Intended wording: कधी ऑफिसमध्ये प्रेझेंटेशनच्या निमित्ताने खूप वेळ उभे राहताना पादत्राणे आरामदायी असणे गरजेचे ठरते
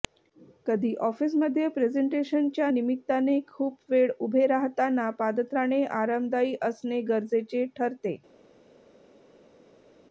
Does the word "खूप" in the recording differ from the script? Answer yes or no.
no